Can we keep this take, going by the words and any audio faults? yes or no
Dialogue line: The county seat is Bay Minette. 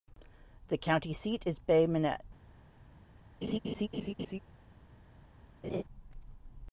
no